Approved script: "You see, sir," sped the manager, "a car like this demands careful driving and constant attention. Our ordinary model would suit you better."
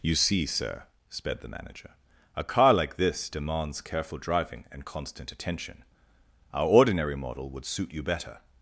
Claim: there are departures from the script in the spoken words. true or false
false